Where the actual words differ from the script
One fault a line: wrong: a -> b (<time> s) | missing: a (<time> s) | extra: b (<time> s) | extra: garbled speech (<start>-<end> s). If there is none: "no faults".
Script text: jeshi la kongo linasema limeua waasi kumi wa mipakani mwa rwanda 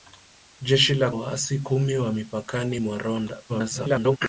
missing: kongo linasema limeua (1.1 s)
extra: garbled speech (3.5-4.2 s)